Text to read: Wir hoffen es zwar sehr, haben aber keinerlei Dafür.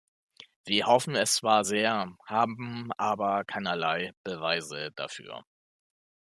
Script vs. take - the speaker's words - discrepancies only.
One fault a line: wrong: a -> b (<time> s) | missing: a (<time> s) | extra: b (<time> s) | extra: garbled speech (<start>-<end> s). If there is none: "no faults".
extra: Beweise (4.2 s)